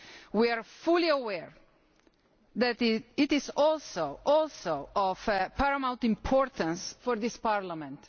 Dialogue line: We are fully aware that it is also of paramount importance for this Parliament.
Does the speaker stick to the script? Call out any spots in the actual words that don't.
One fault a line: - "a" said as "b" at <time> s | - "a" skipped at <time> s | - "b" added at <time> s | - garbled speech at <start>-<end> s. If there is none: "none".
- "also" added at 4.2 s